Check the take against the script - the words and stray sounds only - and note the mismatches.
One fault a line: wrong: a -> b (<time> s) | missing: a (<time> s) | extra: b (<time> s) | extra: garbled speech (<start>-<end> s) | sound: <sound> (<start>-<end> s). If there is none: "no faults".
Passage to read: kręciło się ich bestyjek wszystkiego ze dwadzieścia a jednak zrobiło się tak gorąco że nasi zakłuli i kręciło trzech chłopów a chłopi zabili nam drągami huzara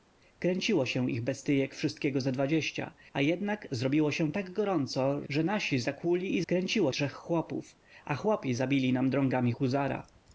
no faults